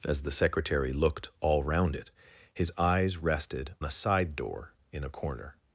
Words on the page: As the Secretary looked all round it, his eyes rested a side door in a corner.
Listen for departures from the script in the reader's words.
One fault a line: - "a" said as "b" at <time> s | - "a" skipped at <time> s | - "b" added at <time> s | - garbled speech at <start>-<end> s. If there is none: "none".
none